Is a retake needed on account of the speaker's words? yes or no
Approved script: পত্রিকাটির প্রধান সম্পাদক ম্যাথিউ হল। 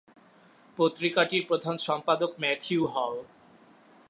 no